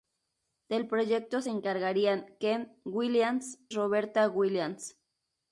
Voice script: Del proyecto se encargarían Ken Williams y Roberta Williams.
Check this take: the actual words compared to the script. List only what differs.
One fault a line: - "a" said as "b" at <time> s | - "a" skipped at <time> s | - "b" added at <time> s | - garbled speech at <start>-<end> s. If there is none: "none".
- "y" skipped at 3.6 s